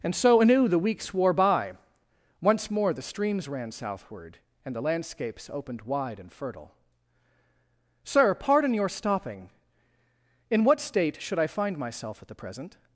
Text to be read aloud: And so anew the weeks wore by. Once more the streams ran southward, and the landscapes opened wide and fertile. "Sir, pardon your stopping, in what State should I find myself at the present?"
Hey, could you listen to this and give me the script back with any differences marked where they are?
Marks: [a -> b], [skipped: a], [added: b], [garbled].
And so anew the weeks wore by. Once more the streams ran southward, and the landscapes opened wide and fertile. "Sir, pardon your stopping, in what State should I find myself at the present?"